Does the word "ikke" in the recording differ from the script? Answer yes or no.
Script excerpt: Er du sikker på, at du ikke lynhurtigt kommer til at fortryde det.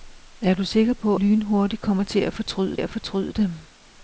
yes